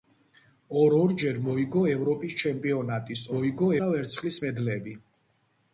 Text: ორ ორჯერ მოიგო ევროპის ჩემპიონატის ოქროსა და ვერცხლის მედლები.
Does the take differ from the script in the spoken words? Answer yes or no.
yes